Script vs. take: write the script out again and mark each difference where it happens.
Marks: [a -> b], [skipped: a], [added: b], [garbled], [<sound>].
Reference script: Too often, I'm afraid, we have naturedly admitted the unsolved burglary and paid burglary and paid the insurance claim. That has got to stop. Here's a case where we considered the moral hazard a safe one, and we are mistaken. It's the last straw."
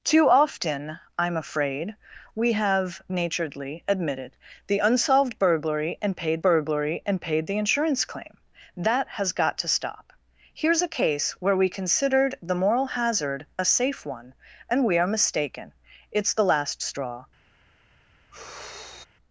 Too often, I'm afraid, we have naturedly admitted the unsolved burglary and paid burglary and paid the insurance claim. That has got to stop. Here's a case where we considered the moral hazard a safe one, and we are mistaken. It's the last straw." [sigh]